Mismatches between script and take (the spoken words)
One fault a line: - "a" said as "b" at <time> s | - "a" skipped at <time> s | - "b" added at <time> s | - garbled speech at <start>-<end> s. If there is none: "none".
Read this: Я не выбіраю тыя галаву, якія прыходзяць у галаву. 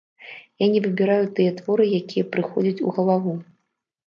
- "галаву" said as "творы" at 1.6 s